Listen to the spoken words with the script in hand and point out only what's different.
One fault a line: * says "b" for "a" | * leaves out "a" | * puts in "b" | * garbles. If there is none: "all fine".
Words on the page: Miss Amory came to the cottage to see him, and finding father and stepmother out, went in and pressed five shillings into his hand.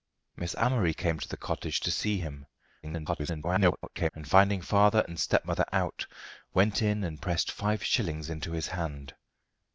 * garbles